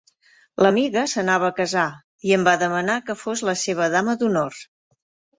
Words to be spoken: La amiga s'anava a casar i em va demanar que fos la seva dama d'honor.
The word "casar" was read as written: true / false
true